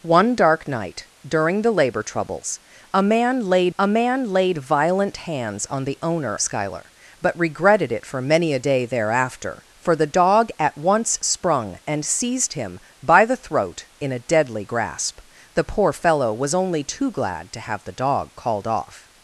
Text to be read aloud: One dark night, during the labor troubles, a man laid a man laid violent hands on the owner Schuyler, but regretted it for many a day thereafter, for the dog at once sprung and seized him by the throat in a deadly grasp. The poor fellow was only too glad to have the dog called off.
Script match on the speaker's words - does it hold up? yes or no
yes